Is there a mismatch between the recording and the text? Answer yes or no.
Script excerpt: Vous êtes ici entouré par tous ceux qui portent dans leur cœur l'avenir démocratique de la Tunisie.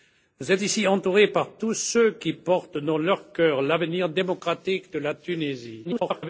yes